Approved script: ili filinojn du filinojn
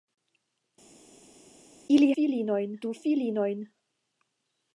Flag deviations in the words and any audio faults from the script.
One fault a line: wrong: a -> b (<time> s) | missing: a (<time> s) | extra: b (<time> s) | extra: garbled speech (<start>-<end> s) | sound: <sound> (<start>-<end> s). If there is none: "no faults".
no faults